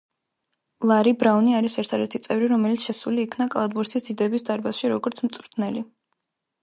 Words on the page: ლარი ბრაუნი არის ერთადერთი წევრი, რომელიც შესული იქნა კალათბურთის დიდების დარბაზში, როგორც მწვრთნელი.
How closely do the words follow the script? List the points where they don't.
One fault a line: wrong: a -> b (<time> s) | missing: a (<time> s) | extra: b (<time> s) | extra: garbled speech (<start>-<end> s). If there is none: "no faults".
no faults